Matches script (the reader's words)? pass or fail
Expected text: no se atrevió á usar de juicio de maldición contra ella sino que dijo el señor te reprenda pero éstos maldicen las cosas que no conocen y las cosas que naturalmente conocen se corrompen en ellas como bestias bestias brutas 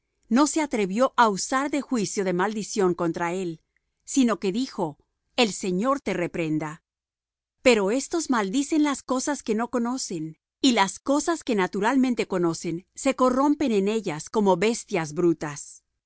fail